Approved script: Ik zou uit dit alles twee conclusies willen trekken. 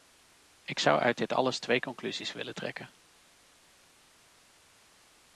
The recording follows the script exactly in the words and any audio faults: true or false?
true